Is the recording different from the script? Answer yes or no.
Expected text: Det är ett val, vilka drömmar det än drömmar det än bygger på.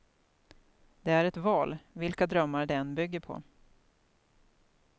yes